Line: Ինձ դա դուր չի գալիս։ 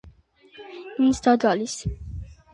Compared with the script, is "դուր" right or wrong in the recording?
wrong